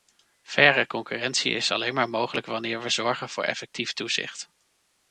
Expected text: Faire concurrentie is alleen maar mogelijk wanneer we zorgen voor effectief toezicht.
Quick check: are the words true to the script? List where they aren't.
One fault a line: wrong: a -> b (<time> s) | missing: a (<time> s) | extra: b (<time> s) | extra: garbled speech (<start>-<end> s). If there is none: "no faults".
no faults